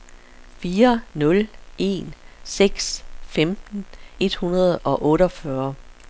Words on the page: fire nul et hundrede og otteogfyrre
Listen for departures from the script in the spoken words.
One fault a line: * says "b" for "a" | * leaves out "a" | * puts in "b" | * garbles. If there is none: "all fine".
* puts in "en seks femten"